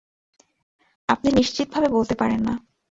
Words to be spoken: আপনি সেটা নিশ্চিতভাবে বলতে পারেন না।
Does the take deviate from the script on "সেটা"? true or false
true